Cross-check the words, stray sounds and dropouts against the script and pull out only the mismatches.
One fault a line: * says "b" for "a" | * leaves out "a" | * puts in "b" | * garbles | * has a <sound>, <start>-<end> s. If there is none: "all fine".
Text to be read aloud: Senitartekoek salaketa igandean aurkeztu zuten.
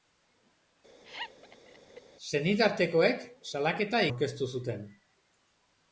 * has a laugh, 1.0-2.0 s
* leaves out "igandean"